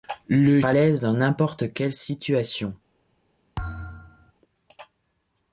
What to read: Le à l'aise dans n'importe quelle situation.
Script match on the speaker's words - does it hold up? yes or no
yes